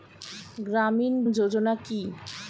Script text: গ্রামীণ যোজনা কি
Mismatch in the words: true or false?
false